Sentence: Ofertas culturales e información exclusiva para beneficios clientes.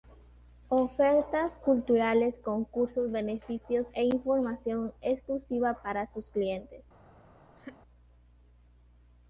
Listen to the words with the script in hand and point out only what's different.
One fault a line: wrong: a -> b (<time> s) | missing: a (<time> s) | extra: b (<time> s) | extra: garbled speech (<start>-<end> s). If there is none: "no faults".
extra: concursos beneficios (2.4 s)
wrong: beneficios -> sus (6.1 s)